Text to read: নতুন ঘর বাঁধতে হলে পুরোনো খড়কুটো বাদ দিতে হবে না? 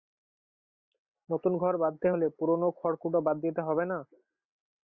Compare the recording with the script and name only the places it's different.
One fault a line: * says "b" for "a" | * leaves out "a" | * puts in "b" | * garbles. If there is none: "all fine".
all fine